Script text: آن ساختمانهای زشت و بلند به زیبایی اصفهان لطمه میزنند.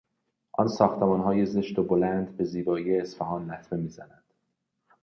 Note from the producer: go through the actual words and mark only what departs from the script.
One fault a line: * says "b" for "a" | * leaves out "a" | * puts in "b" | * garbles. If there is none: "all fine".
all fine